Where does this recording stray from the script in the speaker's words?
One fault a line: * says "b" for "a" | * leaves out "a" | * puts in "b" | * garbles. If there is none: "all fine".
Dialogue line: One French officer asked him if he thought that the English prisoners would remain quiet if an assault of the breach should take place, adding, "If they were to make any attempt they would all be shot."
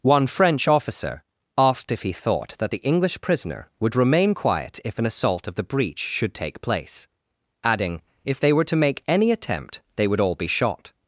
* leaves out "him"
* says "prisoner" for "prisoners"